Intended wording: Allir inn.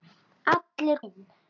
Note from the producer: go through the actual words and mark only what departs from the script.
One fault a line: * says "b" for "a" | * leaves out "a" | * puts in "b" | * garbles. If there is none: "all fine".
all fine